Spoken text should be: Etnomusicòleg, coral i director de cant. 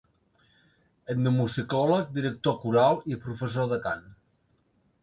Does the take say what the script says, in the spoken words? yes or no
no